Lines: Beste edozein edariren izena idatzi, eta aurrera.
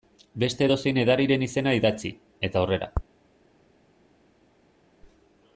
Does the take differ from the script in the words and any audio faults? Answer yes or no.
no